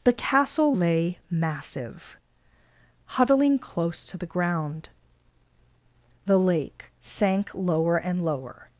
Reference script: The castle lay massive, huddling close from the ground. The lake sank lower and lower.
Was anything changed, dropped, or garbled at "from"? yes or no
yes